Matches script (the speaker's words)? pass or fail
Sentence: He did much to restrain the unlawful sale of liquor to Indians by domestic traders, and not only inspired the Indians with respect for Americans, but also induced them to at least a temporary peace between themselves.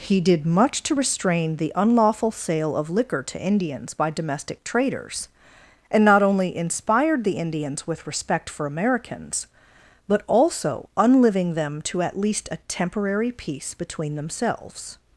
fail